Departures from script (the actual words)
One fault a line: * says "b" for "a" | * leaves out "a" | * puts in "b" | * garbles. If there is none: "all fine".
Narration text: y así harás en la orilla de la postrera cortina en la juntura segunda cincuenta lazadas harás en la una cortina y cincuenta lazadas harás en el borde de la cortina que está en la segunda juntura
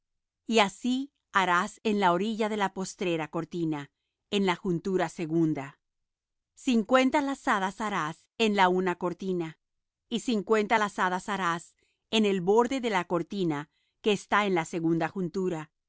all fine